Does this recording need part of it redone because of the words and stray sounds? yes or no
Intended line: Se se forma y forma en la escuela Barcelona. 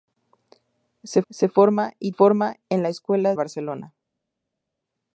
no